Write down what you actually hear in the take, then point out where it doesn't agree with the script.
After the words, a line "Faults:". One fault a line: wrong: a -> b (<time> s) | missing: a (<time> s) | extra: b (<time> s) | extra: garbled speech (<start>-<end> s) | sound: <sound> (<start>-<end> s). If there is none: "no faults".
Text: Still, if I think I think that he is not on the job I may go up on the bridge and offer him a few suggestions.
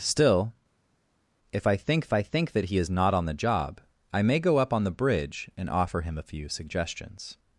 Still, if I think I think that he is not on the job I may go up on the bridge and offer him a few suggestions.
Faults:
no faults